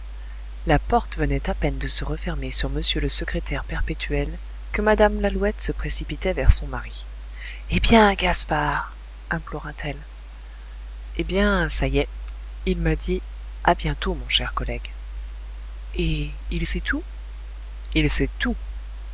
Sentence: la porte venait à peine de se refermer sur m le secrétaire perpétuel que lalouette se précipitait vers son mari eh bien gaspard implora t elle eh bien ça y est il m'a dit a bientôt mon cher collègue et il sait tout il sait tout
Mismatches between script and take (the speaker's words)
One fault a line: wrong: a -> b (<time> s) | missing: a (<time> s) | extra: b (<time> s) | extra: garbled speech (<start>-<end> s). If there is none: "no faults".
extra: mme (4.8 s)